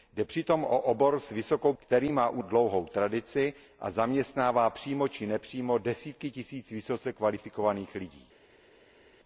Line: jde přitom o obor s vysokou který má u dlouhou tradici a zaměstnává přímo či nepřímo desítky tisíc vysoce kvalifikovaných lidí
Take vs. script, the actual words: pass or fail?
pass